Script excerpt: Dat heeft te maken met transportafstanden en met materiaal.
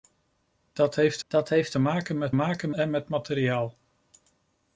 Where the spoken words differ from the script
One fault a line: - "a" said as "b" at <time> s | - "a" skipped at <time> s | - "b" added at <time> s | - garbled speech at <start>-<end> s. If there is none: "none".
- "dat heeft" added at 1.3 s
- "transportafstanden" said as "maken" at 2.3 s